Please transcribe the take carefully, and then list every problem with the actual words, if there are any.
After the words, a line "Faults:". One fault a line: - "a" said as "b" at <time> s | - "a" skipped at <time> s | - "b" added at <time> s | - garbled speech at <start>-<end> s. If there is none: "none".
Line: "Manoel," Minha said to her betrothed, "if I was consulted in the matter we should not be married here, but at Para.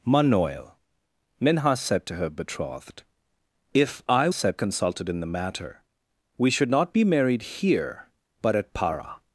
"Manoel," Minha said to her betrothed, "if I said consulted in the matter we should not be married here, but at Para.
Faults:
- "was" said as "said" at 4.3 s